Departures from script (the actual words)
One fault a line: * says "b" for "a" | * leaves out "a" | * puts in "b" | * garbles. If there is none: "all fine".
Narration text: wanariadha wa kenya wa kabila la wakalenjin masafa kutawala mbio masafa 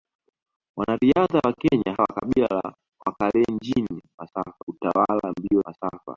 all fine